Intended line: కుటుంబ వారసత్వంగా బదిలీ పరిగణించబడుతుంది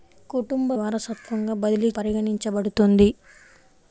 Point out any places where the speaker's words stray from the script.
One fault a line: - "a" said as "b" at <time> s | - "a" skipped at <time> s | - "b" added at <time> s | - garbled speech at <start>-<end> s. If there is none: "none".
none